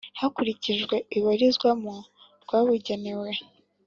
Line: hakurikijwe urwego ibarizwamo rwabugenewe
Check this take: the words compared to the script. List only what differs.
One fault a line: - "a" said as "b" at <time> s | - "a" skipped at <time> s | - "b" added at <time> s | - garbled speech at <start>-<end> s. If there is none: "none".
- "urwego" skipped at 0.9 s